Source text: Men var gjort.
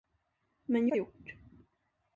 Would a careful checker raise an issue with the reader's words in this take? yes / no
no